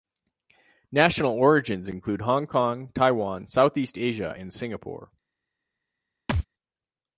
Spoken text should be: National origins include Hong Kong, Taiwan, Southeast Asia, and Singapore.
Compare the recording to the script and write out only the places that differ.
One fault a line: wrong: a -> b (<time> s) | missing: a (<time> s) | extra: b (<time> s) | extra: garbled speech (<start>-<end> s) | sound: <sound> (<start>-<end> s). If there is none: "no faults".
sound: thud (6.3-6.5 s)